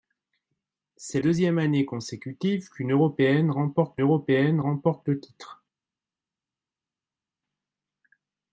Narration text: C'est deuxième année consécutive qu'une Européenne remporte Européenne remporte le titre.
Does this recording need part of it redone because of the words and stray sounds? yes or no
no